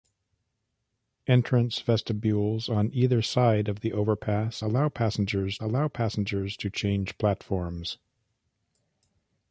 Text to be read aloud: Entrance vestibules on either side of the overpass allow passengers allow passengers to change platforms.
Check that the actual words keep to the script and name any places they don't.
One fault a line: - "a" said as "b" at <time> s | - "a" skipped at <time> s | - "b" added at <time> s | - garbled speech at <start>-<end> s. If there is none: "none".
none